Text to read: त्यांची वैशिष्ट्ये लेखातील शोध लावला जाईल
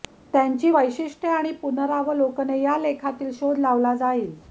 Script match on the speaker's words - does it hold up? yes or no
no